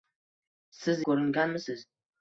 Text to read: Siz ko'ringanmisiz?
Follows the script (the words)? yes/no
yes